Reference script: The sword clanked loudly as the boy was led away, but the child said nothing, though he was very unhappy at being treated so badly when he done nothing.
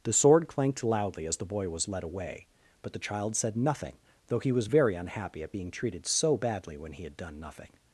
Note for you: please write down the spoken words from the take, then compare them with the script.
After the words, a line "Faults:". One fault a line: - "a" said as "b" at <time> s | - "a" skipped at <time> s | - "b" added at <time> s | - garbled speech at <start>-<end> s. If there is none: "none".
The sword clanked loudly as the boy was led away, but the child said nothing, though he was very unhappy at being treated so badly when he had done nothing.
Faults:
- "had" added at 7.0 s